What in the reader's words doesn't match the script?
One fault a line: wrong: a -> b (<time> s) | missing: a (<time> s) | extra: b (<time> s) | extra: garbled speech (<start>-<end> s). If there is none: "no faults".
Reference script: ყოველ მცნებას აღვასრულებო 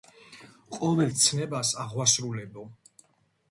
no faults